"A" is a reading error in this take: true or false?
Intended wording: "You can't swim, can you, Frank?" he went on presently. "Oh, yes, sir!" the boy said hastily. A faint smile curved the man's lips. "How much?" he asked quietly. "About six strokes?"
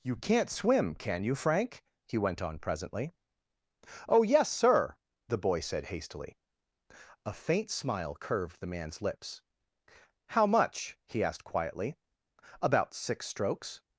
false